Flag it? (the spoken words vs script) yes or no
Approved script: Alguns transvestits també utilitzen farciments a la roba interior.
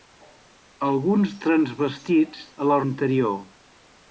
yes